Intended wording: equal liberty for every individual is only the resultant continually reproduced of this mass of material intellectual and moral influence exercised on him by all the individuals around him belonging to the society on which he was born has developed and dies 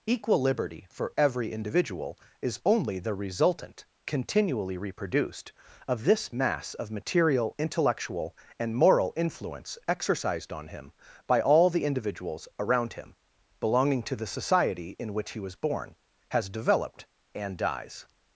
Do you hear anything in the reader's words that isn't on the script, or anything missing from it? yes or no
yes